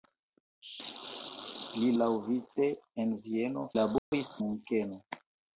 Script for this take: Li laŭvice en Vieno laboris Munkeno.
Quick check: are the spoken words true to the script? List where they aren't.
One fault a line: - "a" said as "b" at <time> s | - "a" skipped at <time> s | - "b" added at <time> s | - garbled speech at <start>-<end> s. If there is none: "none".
none